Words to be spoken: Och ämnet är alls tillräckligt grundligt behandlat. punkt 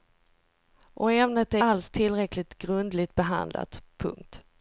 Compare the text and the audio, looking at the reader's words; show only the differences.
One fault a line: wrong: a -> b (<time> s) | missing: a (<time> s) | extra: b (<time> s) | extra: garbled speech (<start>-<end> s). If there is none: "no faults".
no faults